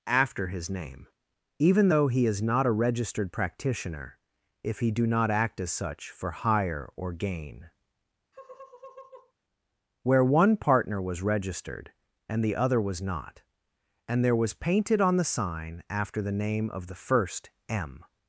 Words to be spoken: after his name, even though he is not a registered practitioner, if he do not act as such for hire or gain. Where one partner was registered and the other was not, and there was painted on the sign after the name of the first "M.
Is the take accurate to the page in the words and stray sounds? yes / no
no